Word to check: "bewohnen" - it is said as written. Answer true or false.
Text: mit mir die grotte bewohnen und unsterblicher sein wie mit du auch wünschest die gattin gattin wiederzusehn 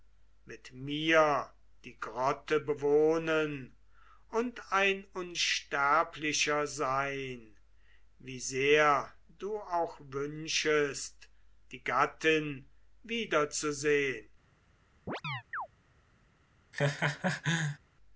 true